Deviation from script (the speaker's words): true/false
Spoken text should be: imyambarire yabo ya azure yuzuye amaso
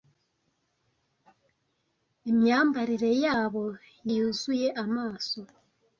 true